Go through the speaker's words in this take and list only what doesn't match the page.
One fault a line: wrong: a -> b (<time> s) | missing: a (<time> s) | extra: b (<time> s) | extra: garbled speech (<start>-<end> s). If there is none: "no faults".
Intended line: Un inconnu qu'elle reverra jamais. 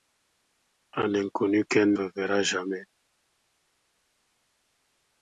no faults